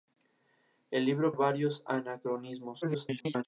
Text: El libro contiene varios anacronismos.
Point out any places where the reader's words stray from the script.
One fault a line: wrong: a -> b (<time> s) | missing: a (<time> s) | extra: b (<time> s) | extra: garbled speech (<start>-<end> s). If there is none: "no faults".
missing: contiene (1.3 s)
extra: garbled speech (2.8-3.4 s)